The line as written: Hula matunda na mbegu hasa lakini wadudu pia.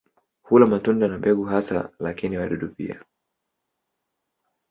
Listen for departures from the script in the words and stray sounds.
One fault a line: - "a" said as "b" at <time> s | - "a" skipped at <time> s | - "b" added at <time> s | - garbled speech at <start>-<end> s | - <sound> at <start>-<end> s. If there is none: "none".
none